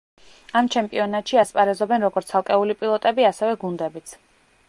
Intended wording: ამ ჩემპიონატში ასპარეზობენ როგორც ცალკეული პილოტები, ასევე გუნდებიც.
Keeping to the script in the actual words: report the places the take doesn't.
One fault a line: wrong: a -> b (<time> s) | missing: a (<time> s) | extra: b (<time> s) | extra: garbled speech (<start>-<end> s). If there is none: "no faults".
no faults